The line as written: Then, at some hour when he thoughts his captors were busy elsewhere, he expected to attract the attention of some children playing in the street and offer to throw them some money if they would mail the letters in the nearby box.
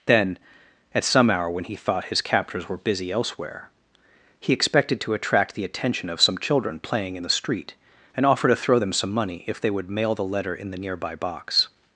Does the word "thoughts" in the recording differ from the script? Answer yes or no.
yes